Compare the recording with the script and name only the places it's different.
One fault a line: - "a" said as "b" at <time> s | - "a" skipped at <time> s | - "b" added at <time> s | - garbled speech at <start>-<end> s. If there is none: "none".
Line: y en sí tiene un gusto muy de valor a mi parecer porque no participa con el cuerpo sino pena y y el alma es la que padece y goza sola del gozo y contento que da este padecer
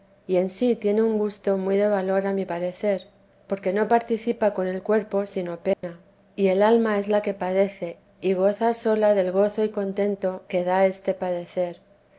- "y" skipped at 6.5 s